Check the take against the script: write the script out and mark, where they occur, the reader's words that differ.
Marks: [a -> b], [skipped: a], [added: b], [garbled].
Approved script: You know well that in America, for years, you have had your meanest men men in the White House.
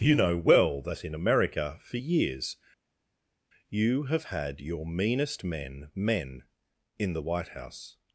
You know well that in America, for years, you have had your meanest men men in the White House.